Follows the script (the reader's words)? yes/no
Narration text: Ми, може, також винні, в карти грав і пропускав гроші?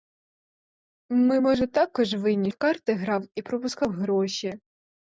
yes